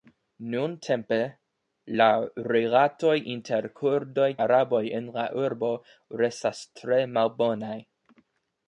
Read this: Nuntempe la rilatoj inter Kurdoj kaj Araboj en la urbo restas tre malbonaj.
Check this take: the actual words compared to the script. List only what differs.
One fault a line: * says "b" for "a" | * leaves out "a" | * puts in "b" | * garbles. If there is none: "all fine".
* leaves out "kaj"